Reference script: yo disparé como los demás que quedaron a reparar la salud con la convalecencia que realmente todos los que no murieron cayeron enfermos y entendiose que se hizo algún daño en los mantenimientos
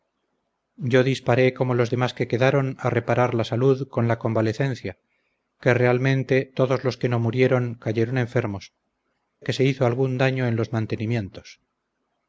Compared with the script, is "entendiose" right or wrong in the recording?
wrong